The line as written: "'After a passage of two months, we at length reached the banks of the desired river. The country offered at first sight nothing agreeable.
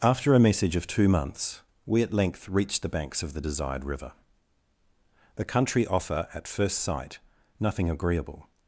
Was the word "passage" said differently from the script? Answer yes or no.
yes